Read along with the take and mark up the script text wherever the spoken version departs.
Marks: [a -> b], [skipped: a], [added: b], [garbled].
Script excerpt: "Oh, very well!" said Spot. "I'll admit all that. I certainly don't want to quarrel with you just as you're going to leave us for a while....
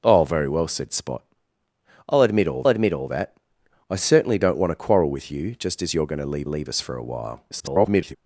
"Oh, very well!" said Spot. "I'll admit all [added: admit all] that. I certainly don't want to quarrel with you just as you're going to leave [added: leave] us for a while.... [garbled]